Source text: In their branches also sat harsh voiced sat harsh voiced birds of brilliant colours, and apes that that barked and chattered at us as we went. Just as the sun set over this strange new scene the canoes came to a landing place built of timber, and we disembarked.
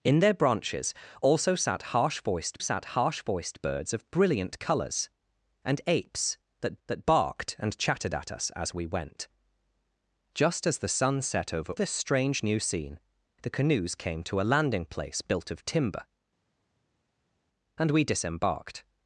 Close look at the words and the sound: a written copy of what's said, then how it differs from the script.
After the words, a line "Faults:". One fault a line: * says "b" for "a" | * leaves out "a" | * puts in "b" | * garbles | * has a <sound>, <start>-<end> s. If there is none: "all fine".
In their branches also sat harsh voiced sat harsh voiced birds of brilliant colours, and apes that that barked and chattered at us as we went. Just as the sun set over this strange new scene the canoes came to a landing place built of timber, and we disembarked.
Faults:
all fine